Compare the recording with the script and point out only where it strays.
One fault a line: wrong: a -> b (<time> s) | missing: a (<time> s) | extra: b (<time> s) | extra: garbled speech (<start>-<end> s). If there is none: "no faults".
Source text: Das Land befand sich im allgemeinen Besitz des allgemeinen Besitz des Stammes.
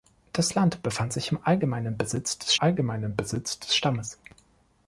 no faults